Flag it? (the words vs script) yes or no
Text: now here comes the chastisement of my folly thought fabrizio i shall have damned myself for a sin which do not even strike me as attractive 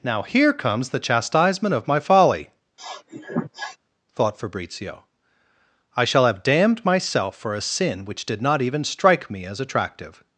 yes